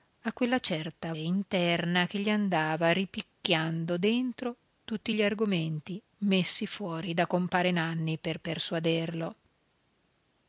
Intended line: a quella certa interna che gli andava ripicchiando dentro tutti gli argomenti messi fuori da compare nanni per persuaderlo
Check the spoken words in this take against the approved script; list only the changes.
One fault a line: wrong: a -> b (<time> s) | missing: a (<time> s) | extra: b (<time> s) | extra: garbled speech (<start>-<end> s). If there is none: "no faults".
no faults